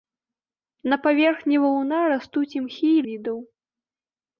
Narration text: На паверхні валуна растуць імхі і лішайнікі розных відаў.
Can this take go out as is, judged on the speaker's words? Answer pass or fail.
fail